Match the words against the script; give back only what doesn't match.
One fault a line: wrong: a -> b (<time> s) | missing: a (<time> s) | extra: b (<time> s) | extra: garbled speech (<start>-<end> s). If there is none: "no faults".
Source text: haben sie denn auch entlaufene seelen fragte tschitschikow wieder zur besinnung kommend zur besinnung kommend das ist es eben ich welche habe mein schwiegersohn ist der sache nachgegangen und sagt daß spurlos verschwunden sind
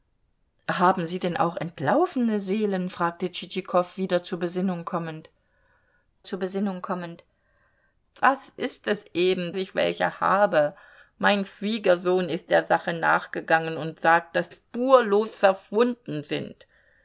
no faults